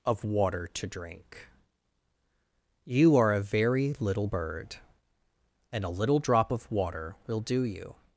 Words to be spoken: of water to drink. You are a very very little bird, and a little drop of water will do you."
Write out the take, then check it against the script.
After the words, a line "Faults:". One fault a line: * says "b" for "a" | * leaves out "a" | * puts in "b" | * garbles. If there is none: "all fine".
of water to drink. You are a very little bird, and a little drop of water will do you."
Faults:
* leaves out "very"